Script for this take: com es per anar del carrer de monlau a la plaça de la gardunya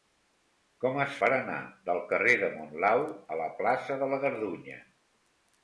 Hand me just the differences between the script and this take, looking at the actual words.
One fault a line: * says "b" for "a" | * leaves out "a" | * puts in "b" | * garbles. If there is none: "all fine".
all fine